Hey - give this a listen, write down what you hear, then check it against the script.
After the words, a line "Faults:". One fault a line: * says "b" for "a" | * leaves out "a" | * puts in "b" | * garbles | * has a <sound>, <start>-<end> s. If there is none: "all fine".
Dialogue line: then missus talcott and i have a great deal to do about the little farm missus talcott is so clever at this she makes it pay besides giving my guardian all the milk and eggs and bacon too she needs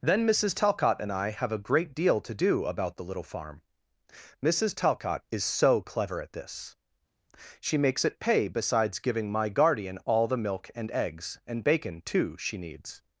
then missus talcott and i have a great deal to do about the little farm missus talcott is so clever at this she makes it pay besides giving my guardian all the milk and eggs and bacon too she needs
Faults:
all fine